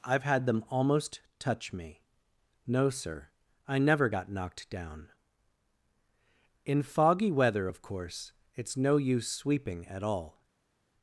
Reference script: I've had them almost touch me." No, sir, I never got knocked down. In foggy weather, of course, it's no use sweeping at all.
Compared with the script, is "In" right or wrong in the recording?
right